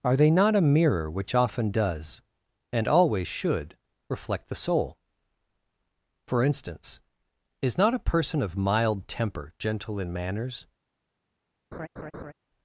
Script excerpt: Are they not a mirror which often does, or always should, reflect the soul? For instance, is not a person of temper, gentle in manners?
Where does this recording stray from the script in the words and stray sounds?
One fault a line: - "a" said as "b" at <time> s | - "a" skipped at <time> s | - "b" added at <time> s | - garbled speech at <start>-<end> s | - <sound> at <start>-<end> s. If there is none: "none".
- "or" said as "and" at 2.7 s
- "mild" added at 8.6 s
- laugh at 11.7-12.3 s